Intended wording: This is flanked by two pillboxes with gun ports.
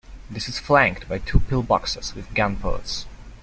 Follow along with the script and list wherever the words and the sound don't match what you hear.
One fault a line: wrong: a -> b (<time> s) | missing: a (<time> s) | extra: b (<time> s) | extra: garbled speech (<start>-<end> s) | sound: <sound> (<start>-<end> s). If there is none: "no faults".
no faults